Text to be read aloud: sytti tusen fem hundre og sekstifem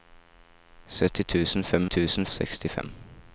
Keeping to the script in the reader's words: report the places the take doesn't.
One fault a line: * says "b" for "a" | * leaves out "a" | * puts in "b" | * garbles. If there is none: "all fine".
* says "tusen" for "hundre"